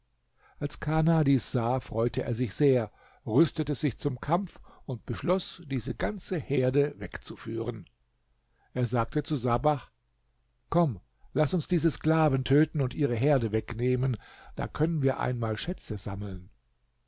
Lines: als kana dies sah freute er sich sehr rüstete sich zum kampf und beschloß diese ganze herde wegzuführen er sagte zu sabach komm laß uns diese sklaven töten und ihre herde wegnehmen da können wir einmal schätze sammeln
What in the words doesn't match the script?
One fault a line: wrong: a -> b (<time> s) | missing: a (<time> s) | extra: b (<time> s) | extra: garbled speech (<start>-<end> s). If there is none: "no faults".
no faults